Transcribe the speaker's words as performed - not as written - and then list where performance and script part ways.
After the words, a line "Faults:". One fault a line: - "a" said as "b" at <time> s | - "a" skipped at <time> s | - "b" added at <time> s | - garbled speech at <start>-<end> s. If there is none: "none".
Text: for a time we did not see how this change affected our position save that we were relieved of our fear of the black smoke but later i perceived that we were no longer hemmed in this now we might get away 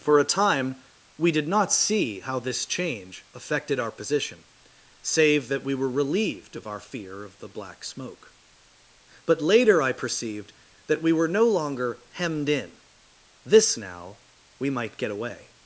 for a time we did not see how this change affected our position save that we were relieved of our fear of the black smoke but later i perceived that we were no longer hemmed in this now we might get away
Faults:
none